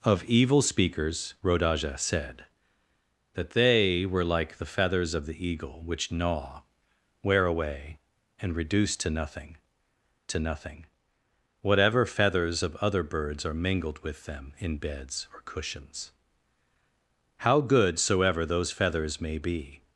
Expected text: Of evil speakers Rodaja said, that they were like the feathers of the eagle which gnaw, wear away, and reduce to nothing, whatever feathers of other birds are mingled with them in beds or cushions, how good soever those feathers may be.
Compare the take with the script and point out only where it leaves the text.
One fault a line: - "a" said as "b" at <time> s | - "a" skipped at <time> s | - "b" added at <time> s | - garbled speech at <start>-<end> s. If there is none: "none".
- "to nothing" added at 10.3 s